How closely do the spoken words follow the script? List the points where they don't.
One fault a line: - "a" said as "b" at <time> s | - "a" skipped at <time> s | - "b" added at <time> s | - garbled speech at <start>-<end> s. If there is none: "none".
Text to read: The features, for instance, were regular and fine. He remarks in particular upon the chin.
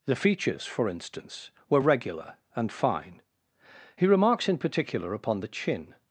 none